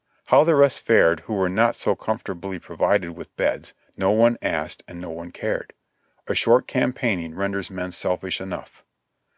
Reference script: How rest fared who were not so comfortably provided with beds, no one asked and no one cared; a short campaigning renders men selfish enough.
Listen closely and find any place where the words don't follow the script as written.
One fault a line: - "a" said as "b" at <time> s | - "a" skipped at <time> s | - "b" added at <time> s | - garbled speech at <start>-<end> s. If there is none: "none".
- "the" added at 0.4 s